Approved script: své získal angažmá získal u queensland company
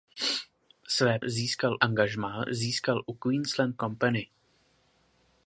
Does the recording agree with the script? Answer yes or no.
yes